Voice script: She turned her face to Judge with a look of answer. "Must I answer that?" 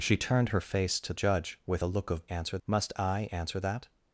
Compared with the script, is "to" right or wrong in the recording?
right